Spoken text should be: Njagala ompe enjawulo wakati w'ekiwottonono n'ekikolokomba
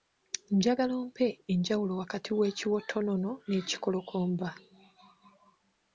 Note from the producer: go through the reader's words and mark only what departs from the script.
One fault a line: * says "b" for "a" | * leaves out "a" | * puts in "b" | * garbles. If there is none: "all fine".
all fine